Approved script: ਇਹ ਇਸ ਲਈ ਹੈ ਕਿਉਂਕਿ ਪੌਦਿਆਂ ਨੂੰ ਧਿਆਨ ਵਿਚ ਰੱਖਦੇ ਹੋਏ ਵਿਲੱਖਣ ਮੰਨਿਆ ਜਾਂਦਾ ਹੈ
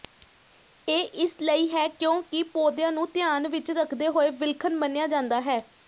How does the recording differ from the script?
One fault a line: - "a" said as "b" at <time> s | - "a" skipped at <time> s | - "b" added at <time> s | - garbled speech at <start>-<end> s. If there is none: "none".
none